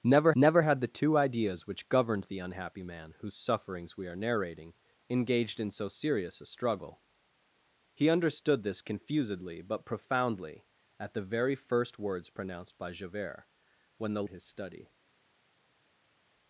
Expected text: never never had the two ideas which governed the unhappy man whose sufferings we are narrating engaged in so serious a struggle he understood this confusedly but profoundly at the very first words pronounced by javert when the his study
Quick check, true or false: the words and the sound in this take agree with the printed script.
true